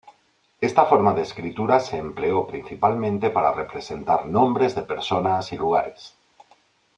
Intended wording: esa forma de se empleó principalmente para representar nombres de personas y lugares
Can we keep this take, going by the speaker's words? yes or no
no